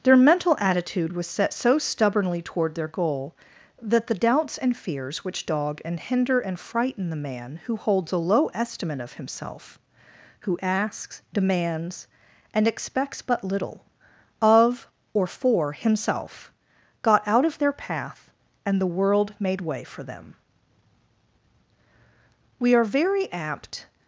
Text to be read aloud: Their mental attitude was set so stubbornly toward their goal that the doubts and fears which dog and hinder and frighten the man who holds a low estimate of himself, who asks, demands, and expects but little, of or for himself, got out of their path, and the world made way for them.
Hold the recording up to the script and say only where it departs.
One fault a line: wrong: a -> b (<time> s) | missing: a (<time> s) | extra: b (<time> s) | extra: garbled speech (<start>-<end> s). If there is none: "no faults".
extra: We are very apt (22.6 s)